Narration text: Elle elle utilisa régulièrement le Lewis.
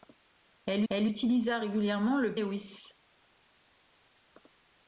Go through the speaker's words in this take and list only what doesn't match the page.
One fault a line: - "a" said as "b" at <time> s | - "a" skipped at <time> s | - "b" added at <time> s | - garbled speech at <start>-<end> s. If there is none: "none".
none